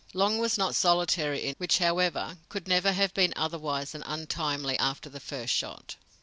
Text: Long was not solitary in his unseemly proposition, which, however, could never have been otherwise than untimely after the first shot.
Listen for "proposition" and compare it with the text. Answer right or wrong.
wrong